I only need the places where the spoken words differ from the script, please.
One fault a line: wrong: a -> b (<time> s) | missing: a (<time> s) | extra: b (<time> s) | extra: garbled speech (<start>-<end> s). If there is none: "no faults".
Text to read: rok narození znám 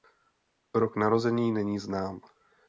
extra: není (1.5 s)